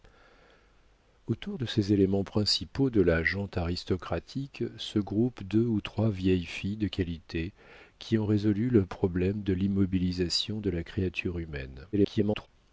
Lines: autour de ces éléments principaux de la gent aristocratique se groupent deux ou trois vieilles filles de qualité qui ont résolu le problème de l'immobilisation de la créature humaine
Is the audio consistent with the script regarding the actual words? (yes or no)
no